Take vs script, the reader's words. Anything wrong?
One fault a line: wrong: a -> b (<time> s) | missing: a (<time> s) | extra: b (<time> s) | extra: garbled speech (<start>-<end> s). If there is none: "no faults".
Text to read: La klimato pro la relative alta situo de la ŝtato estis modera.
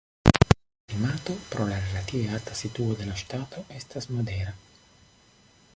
wrong: estis -> estas (3.8 s)